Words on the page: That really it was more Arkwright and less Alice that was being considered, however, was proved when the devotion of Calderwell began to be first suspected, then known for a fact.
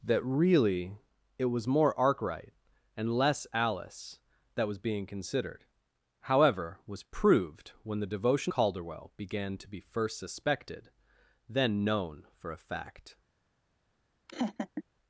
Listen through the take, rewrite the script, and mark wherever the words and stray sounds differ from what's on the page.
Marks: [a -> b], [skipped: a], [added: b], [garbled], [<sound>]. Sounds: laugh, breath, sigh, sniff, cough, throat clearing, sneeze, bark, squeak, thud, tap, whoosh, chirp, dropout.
That really it was more Arkwright and less Alice that was being considered, however, was proved when the devotion [skipped: of] Calderwell began to be first suspected, then known for a fact. [laugh]